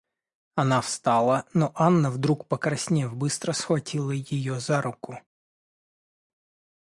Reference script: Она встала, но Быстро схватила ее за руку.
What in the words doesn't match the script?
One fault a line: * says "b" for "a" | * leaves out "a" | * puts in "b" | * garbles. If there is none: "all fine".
* puts in "Анна вдруг покраснев"